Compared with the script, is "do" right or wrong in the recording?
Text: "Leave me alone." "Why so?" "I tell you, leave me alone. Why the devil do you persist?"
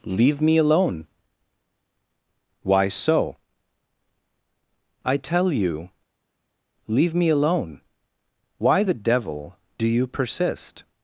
right